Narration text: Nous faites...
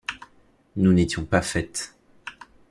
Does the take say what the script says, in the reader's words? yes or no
no